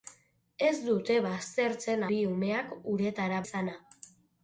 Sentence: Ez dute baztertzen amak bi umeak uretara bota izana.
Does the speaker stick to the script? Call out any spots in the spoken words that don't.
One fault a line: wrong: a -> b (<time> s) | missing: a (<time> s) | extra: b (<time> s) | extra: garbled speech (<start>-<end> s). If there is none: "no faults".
missing: amak (2.0 s)
missing: bota (3.4 s)